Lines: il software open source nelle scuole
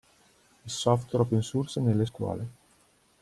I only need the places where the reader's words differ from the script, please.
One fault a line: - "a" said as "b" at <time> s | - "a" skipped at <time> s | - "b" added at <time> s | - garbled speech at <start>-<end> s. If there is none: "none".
none